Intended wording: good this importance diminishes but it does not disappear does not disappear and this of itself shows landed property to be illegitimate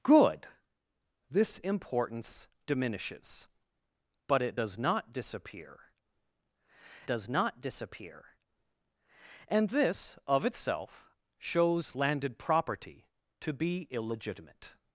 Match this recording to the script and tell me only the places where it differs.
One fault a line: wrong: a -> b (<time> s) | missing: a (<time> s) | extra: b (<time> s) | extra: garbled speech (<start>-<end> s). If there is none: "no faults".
no faults